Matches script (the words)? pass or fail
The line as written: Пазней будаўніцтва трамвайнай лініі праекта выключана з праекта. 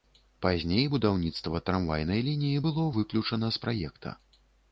fail